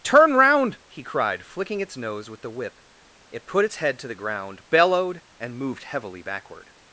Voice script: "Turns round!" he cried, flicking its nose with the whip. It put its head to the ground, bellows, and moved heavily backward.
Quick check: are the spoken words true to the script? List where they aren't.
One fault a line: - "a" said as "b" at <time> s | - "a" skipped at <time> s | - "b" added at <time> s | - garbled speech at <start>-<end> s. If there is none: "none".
- "Turns" said as "Turn" at 0.0 s
- "bellows" said as "bellowed" at 4.7 s